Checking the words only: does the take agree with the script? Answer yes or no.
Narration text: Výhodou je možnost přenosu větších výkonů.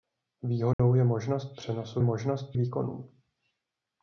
no